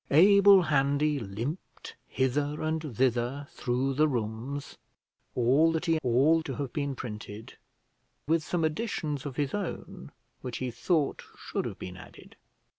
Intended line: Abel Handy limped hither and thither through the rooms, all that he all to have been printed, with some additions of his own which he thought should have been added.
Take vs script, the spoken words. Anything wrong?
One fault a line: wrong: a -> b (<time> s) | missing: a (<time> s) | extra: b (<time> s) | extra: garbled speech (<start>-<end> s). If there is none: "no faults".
no faults